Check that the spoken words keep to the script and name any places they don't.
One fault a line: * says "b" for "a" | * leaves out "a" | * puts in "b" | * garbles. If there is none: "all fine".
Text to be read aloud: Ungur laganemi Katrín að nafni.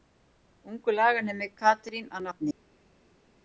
all fine